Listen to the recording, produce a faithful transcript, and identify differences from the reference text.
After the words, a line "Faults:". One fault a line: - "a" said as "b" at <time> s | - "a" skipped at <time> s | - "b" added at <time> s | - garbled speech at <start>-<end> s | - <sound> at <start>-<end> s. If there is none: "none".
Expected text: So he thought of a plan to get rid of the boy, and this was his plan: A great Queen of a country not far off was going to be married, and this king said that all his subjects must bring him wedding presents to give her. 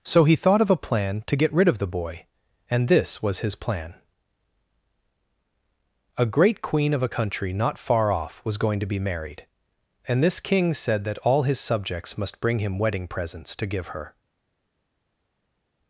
So he thought of a plan to get rid of the boy, and this was his plan: A great Queen of a country not far off was going to be married, and this king said that all his subjects must bring him wedding presents to give her.
Faults:
none